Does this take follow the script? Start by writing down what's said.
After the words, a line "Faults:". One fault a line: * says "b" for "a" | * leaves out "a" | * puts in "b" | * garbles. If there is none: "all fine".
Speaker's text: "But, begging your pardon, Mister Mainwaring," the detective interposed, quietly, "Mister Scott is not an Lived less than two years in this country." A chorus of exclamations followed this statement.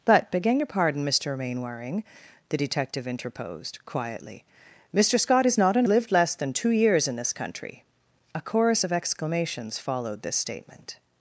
"But, begging your pardon, Mister Mainwaring," the detective interposed, quietly, "Mister Scott is not an Lived less than two years in this country." A chorus of exclamations followed this statement.
Faults:
all fine